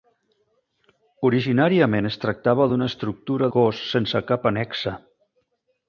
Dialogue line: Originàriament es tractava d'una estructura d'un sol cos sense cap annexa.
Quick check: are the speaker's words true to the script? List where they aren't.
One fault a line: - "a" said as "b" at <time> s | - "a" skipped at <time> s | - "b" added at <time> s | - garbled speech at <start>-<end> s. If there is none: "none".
- "d'un sol" skipped at 3.5 s